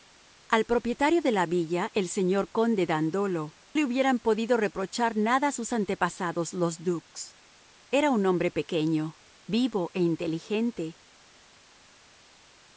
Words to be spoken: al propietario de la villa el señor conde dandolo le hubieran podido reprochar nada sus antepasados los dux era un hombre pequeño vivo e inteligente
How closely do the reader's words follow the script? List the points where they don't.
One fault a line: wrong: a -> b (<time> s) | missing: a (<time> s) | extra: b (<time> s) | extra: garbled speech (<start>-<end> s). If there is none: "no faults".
no faults